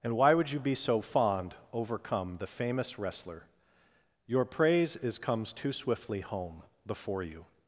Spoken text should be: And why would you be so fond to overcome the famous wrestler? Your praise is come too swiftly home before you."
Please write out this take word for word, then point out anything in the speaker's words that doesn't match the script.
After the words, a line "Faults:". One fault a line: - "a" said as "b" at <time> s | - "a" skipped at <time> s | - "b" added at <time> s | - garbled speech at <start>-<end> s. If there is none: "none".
And why would you be so fond overcome the famous wrestler? Your praise is comes too swiftly home before you."
Faults:
- "to" skipped at 1.5 s
- "come" said as "comes" at 5.2 s